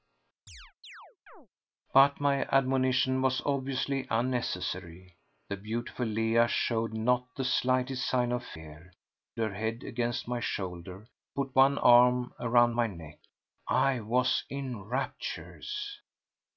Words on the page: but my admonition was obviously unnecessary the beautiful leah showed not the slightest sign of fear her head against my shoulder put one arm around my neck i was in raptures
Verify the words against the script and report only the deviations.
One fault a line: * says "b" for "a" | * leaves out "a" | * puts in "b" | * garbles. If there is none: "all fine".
all fine